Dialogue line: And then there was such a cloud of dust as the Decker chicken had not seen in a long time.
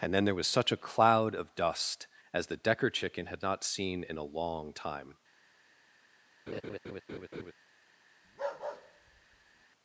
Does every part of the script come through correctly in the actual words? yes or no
yes